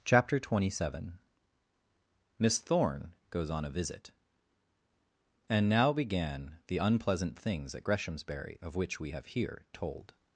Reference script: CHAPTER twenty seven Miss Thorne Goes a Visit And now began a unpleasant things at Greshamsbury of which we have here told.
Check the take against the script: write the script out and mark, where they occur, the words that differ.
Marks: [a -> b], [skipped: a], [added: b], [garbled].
CHAPTER twenty seven Miss Thorne Goes [added: on] a Visit And now began [a -> the] unpleasant things at Greshamsbury of which we have here told.